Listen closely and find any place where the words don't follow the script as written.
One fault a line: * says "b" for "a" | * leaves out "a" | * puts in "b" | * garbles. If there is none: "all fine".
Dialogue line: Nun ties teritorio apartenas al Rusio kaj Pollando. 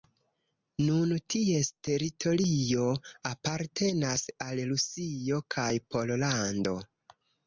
all fine